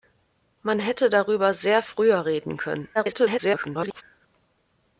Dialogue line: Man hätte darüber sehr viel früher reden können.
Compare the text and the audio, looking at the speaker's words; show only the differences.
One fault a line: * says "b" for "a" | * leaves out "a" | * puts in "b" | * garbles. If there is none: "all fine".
* leaves out "viel"
* garbles